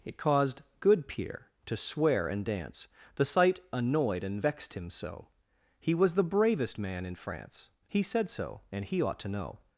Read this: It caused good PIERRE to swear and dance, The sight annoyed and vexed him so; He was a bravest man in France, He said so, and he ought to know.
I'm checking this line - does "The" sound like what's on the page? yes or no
yes